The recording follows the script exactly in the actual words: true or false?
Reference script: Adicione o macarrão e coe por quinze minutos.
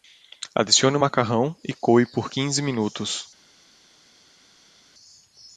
true